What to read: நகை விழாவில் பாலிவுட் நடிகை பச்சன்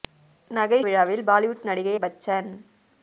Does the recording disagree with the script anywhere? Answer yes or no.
no